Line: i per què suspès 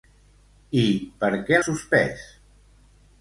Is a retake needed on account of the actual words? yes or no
no